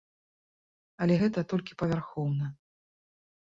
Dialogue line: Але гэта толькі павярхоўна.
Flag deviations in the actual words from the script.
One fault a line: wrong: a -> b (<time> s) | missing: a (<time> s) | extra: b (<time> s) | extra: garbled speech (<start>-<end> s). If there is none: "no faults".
no faults